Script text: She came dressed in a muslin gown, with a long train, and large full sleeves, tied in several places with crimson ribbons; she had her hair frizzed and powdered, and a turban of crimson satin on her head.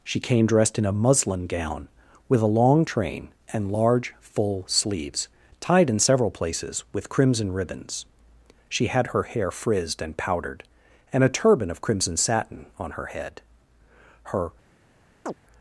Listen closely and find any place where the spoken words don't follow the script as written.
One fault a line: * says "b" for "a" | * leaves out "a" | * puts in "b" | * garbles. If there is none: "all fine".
* puts in "Her"